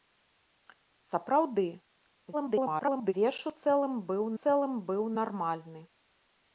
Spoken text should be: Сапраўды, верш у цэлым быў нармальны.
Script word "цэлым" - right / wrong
right